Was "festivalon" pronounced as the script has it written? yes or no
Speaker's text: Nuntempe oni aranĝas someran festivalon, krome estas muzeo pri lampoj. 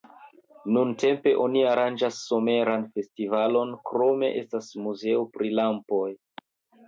yes